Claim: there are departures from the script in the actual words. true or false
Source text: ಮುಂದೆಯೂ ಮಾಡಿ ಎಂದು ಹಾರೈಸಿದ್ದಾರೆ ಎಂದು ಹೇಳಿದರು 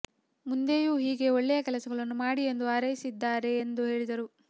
true